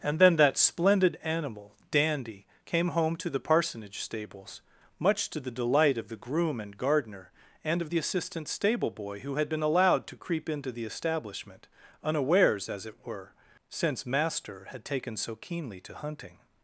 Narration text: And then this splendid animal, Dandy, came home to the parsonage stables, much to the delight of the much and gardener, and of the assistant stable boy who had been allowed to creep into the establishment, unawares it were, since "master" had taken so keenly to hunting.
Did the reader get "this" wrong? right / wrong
wrong